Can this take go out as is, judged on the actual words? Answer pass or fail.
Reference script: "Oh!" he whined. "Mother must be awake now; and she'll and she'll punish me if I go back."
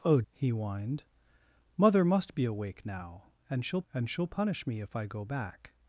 pass